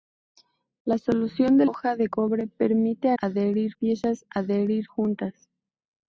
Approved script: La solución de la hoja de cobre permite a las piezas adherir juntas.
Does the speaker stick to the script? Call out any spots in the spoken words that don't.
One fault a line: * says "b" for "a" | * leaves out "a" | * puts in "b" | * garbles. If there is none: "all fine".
* leaves out "la"
* says "adherir" for "las"